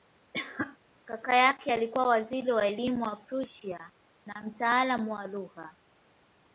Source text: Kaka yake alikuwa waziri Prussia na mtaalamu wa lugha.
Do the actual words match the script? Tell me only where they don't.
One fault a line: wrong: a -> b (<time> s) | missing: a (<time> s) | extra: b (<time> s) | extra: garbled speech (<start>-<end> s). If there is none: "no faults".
extra: wa elimu wa (2.5 s)